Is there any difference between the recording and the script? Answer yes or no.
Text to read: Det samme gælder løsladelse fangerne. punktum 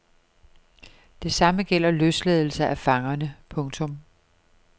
yes